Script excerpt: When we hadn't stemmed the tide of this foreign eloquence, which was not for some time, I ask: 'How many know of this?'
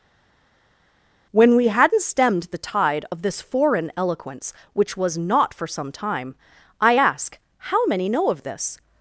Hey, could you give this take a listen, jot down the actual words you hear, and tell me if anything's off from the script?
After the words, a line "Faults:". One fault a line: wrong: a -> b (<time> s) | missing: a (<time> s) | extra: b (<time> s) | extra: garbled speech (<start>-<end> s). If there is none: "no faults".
When we hadn't stemmed the tide of this foreign eloquence, which was not for some time, I ask: 'How many know of this?'
Faults:
no faults